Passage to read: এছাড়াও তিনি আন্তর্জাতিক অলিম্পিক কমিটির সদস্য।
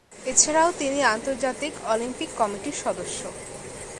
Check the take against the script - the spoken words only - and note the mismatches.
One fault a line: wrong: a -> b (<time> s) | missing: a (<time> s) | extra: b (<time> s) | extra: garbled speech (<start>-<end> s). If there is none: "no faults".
no faults